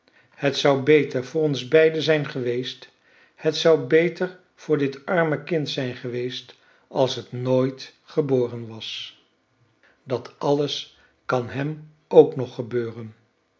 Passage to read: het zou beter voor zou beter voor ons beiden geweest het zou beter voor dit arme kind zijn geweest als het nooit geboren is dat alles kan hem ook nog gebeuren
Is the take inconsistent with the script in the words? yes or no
yes